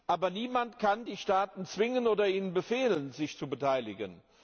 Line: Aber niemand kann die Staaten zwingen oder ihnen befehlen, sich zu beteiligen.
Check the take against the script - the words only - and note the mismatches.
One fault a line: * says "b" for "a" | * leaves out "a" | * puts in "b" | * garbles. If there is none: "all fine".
all fine